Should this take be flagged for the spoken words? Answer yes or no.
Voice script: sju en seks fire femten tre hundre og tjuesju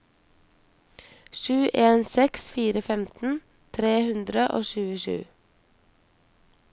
no